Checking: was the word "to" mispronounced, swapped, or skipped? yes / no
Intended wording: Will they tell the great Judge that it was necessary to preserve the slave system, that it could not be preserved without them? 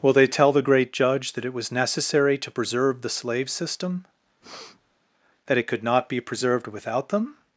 no